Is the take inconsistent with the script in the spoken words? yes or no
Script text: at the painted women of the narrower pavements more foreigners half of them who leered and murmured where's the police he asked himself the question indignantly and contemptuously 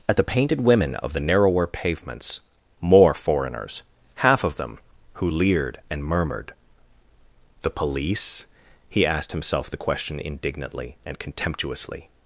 yes